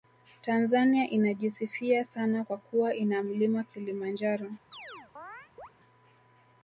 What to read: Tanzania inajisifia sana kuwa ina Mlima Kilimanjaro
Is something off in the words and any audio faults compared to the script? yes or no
yes